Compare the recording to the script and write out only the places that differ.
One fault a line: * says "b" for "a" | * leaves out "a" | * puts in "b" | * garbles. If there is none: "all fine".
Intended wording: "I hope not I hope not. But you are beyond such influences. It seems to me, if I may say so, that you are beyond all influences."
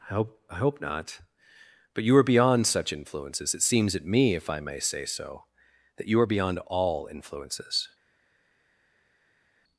* leaves out "not"
* says "at" for "to"